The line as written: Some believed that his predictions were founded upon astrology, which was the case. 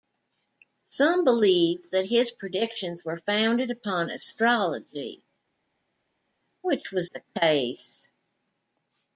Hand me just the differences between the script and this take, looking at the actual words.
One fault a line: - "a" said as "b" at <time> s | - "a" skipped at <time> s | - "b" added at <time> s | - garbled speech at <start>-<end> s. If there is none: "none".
none